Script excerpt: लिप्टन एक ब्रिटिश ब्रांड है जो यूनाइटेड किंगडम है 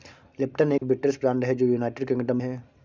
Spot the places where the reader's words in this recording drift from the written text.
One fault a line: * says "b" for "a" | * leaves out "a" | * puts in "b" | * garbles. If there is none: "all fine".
all fine